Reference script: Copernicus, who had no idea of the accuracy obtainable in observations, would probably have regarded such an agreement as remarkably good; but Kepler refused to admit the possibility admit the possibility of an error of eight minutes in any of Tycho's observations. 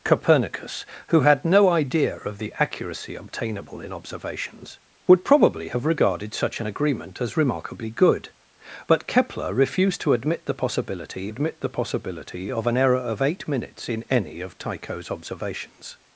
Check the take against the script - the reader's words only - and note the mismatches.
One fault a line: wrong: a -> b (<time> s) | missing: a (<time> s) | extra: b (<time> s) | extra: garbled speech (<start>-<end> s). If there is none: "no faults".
no faults